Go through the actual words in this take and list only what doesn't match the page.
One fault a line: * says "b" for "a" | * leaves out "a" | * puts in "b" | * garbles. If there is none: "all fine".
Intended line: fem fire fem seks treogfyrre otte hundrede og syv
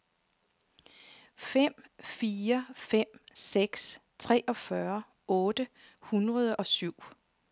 all fine